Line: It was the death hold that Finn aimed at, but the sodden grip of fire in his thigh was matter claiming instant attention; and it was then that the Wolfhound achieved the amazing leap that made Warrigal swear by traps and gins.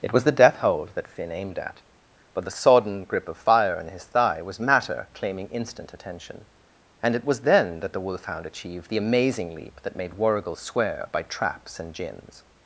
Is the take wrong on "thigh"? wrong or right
right